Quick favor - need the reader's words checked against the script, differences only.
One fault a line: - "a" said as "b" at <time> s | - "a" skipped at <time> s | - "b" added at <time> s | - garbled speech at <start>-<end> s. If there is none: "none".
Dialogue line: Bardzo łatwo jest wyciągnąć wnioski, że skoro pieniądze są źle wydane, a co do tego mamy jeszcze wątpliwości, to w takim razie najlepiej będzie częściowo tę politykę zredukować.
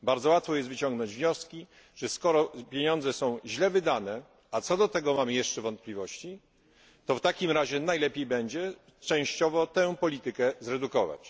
none